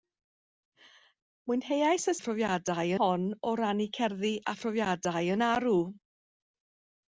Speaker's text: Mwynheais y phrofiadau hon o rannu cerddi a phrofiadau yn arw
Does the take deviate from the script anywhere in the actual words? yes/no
no